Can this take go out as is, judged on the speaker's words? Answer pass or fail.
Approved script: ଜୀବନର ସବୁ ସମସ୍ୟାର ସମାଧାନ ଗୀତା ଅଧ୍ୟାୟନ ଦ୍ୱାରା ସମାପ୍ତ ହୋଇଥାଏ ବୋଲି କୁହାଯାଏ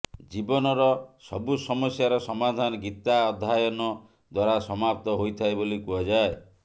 pass